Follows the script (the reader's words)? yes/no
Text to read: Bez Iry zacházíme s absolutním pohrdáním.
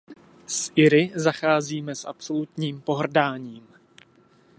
no